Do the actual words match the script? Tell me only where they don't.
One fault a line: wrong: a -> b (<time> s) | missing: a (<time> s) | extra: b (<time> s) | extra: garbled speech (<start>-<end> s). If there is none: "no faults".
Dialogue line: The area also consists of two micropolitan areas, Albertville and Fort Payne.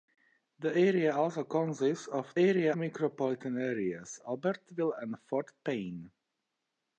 wrong: two -> area (2.4 s)